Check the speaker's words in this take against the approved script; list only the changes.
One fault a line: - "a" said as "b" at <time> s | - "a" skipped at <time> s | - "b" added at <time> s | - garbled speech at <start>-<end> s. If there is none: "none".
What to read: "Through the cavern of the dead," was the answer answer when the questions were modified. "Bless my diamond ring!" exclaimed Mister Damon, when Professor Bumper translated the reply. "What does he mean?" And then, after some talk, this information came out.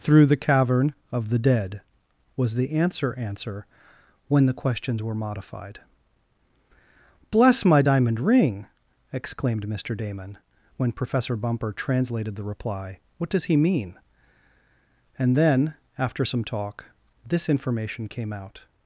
none